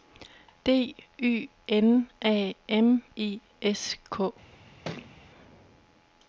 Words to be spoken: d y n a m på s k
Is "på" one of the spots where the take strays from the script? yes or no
yes